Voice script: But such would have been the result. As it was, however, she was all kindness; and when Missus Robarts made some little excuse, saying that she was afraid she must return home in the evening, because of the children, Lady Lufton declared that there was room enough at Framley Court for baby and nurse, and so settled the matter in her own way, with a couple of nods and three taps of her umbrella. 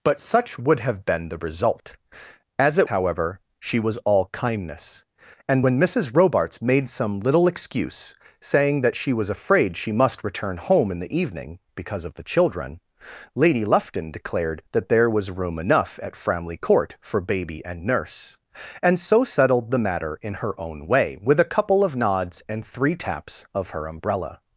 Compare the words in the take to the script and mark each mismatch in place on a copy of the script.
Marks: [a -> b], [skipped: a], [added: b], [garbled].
But such would have been the result. As it [skipped: was,] however, she was all kindness; and when Missus Robarts made some little excuse, saying that she was afraid she must return home in the evening, because of the children, Lady Lufton declared that there was room enough at Framley Court for baby and nurse, and so settled the matter in her own way, with a couple of nods and three taps of her umbrella.